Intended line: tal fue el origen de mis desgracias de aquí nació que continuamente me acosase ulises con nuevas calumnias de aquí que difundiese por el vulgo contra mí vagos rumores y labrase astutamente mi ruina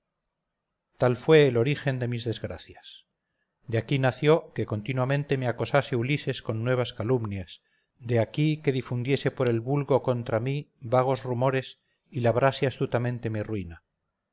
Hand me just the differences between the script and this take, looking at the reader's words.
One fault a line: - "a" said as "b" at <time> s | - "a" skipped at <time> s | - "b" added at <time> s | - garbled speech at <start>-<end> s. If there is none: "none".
none